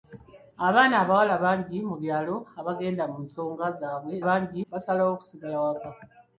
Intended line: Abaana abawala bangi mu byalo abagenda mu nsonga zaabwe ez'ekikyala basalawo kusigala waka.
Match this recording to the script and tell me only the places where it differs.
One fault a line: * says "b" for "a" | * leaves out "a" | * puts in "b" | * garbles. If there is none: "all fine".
* says "bangi" for "ez'ekikyala"